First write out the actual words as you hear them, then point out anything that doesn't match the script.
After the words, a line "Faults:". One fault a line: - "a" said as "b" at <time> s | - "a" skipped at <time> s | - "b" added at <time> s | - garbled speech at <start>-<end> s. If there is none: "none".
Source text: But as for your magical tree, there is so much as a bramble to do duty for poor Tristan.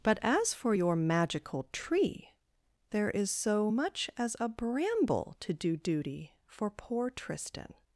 But as for your magical tree, there is so much as a bramble to do duty for poor Tristan.
Faults:
none